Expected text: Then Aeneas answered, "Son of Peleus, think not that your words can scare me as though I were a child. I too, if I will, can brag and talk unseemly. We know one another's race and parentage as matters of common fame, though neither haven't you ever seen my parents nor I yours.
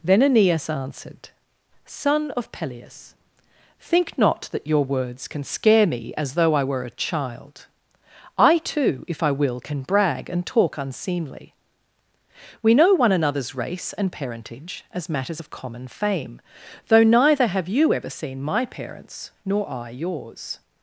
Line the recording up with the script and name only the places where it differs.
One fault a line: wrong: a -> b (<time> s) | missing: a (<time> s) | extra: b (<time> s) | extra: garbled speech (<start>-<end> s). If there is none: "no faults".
wrong: haven't -> have (17.5 s)